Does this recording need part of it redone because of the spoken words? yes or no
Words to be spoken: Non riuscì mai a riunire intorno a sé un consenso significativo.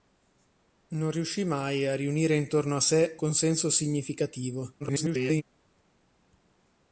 yes